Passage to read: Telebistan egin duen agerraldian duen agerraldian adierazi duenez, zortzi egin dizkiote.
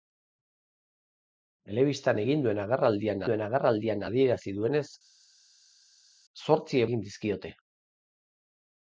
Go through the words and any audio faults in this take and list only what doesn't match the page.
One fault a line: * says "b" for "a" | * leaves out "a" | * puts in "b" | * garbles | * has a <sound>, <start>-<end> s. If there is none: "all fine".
all fine